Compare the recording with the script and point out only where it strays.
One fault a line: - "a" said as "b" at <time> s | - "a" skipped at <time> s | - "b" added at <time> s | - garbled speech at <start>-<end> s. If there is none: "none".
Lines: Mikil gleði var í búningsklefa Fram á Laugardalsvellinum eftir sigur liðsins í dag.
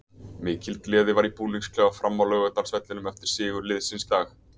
none